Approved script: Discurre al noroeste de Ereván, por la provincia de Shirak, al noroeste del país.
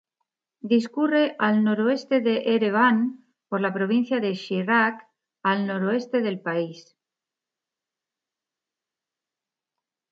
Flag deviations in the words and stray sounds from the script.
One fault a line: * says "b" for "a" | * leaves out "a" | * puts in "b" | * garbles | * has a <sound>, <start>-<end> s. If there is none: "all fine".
all fine